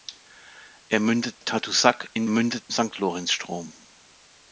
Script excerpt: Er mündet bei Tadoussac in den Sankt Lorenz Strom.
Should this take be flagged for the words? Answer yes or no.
yes